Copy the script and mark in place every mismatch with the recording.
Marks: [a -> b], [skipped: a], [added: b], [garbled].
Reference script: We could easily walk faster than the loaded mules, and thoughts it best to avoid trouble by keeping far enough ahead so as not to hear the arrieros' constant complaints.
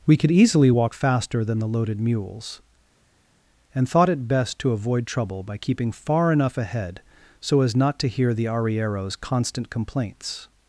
We could easily walk faster than the loaded mules, and [thoughts -> thought] it best to avoid trouble by keeping far enough ahead so as not to hear the arrieros' constant complaints.